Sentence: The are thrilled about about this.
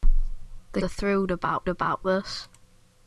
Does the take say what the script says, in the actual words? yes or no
yes